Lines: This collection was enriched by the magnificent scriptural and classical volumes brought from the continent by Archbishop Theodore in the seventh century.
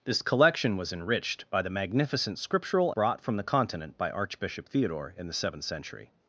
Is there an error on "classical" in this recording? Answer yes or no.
yes